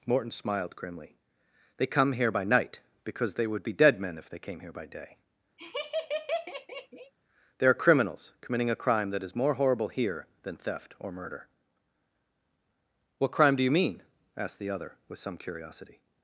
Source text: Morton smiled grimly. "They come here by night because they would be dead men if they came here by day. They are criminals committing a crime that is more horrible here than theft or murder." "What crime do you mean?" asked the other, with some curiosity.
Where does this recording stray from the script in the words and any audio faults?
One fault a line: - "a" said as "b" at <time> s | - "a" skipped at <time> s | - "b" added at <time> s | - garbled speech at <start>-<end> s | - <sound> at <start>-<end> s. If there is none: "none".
- laugh at 5.6-7.1 s